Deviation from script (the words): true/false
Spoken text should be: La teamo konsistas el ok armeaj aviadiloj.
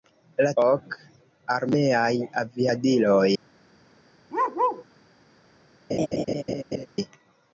true